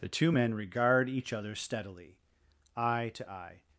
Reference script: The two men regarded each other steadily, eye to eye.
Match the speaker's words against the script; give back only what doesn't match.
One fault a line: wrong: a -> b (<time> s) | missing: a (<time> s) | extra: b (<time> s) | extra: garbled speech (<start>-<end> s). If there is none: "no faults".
wrong: regarded -> regard (0.5 s)